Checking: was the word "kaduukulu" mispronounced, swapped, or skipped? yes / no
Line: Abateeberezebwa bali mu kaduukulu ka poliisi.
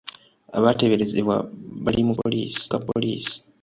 yes